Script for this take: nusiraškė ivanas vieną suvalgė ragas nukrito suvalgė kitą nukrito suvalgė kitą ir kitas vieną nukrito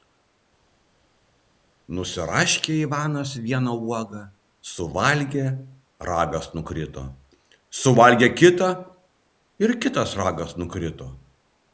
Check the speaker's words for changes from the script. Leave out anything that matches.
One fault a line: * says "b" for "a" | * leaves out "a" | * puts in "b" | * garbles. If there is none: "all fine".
* puts in "uogą"
* leaves out "nukrito suvalgė kitą"
* says "ragas" for "vieną"